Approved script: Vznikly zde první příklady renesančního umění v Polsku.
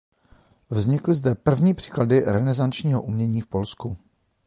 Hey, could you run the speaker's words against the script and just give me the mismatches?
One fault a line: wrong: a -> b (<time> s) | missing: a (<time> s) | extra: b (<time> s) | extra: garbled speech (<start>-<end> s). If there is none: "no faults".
no faults